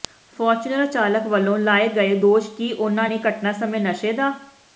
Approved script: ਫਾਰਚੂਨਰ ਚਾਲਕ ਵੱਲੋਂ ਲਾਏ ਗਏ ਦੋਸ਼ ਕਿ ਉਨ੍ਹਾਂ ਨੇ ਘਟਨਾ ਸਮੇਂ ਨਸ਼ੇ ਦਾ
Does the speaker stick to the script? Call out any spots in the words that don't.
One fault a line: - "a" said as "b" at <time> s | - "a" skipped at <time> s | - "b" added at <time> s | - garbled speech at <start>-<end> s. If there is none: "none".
none